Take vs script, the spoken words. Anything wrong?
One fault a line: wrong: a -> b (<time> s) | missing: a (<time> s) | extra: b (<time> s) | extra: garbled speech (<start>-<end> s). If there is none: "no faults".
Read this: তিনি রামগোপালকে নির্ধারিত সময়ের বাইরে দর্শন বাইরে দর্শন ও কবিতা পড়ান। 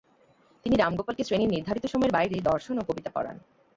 extra: শ্রেণীর (1.2 s)
missing: বাইরে দর্শন (2.8 s)